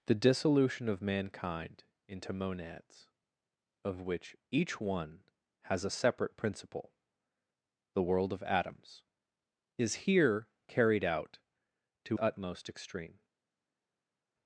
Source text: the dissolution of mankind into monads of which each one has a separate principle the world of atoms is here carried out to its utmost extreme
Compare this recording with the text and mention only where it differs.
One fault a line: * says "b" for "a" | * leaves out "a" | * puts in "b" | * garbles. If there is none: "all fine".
* leaves out "its"